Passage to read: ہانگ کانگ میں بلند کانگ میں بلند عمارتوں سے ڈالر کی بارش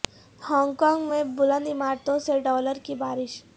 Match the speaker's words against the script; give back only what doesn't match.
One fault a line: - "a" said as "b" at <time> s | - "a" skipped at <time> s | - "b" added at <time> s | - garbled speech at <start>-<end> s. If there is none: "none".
- "کانگ میں بلند" skipped at 1.7 s